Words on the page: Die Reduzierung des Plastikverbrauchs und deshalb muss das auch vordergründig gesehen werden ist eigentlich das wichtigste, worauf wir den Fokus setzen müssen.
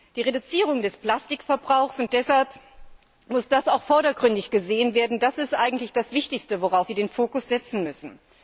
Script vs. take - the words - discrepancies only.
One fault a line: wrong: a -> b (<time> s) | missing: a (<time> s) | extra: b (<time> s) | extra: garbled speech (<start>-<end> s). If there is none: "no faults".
no faults